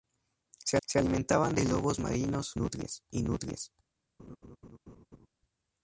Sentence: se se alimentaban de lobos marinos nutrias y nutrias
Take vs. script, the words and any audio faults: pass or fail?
fail